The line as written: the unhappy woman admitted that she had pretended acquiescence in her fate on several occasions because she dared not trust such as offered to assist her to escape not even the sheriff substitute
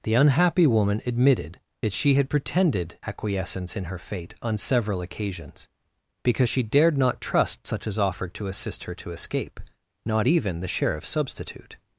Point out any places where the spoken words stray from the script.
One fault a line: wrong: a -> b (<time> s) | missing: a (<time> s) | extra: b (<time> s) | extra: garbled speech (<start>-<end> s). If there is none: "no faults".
no faults